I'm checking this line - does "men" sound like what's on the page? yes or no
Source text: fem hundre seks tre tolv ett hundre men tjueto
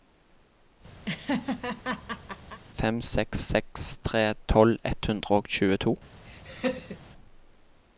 no